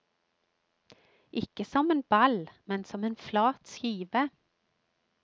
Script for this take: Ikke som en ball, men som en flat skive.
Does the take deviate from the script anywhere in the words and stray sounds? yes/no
no